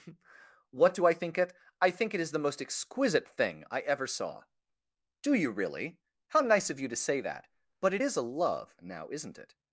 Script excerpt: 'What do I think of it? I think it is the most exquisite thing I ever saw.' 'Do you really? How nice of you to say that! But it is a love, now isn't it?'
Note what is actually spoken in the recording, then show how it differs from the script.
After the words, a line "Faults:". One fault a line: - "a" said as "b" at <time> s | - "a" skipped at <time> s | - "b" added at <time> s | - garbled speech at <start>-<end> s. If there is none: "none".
'What do I think it? I think it is the most exquisite thing I ever saw.' 'Do you really? How nice of you to say that! But it is a love, now isn't it?'
Faults:
- "of" skipped at 1.4 s